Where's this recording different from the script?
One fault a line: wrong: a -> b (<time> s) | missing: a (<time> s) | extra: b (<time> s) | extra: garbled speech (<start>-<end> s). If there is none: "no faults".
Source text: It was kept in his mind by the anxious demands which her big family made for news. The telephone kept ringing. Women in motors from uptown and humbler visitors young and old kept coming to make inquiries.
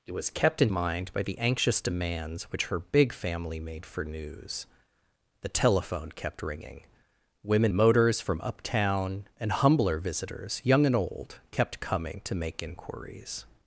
missing: his (0.7 s)
missing: in (7.7 s)